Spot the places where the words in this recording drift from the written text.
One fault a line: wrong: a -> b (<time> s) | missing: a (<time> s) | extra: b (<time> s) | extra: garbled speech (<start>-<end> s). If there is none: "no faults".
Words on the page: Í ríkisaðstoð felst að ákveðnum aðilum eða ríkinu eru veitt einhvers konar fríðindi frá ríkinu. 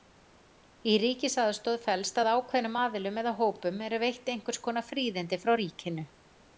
wrong: ríkinu -> hópum (3.4 s)